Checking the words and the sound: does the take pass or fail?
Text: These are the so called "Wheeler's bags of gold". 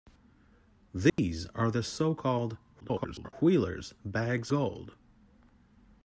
fail